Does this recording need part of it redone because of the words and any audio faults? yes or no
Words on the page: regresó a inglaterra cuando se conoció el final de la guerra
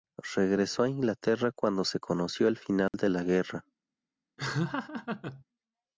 yes